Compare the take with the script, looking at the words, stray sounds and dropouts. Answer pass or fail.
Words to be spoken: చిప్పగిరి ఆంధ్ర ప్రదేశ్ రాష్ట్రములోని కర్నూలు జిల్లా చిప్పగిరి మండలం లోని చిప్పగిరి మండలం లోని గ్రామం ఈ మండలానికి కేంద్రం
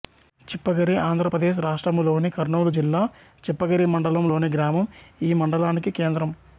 fail